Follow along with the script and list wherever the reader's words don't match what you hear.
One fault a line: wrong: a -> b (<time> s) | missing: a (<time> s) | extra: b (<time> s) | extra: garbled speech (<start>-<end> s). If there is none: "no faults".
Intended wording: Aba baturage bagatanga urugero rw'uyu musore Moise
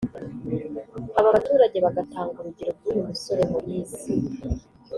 no faults